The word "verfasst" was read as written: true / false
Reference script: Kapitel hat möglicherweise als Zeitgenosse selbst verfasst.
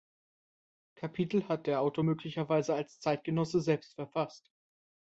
true